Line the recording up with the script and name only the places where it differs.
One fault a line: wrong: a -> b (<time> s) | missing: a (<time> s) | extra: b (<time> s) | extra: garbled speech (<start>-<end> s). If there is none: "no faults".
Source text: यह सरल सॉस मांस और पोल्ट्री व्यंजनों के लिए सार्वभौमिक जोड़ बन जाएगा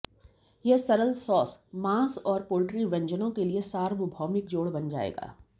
no faults